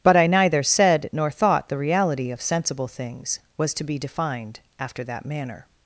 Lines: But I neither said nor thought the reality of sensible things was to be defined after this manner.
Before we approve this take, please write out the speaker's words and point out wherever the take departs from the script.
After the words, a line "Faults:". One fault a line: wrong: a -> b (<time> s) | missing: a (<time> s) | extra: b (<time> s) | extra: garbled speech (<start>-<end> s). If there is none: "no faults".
But I neither said nor thought the reality of sensible things was to be defined after that manner.
Faults:
wrong: this -> that (5.0 s)